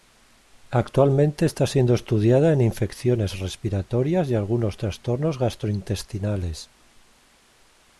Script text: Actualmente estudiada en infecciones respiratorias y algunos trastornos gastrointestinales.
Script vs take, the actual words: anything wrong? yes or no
yes